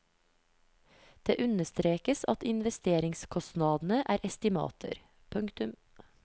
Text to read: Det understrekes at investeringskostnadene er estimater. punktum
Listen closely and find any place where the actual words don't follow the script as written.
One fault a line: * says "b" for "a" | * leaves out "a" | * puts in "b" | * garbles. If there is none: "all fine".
all fine